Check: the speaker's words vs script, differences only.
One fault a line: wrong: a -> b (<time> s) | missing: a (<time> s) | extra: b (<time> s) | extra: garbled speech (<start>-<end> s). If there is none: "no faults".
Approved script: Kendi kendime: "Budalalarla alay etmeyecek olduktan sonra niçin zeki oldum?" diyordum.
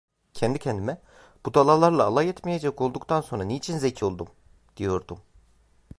no faults